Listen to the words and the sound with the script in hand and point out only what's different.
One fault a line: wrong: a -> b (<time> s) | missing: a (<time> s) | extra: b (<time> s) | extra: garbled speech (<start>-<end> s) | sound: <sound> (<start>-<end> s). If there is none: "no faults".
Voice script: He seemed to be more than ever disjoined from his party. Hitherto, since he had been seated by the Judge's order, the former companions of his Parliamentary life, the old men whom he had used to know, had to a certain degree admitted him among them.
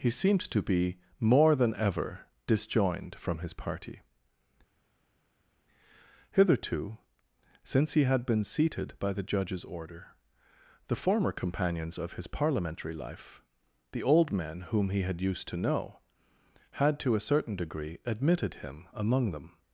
no faults